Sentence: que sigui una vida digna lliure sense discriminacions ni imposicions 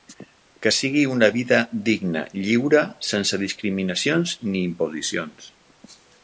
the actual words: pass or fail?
pass